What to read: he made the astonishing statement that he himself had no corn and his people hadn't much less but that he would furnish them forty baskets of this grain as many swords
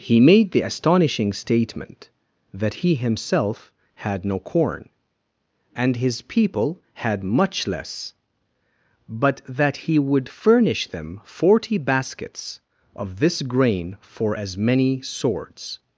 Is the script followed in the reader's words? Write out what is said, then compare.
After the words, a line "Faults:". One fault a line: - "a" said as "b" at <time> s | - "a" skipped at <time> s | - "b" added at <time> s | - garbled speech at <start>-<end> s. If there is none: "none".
he made the astonishing statement that he himself had no corn and his people had much less but that he would furnish them forty baskets of this grain for as many swords
Faults:
- "hadn't" said as "had" at 6.9 s
- "for" added at 14.0 s